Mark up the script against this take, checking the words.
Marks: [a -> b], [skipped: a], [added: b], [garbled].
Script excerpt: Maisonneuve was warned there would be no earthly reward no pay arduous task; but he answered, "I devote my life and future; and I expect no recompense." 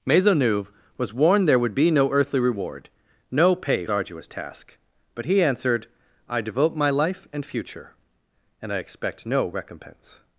Maisonneuve was warned there would be no earthly reward no pay arduous task; but he answered, "I devote my life and future; and I expect no recompense."